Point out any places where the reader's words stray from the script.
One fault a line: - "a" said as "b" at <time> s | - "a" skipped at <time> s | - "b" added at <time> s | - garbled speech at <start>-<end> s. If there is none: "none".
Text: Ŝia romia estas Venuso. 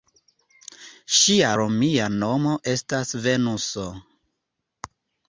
- "nomo" added at 2.2 s